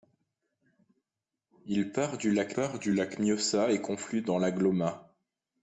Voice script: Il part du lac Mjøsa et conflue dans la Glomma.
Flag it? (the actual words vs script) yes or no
yes